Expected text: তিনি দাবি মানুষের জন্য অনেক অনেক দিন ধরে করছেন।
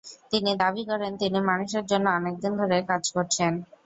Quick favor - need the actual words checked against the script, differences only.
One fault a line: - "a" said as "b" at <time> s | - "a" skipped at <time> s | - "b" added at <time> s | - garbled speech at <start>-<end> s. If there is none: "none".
- "করেন তিনি" added at 0.9 s
- "অনেক" skipped at 2.3 s
- "কাজ" added at 2.9 s